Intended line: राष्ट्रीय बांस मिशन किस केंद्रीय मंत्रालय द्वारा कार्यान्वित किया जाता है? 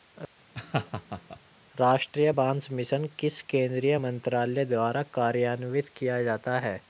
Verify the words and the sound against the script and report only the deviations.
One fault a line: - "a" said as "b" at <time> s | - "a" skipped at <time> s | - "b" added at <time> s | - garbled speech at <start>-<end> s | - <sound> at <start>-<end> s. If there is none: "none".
- laugh at 0.5-1.4 s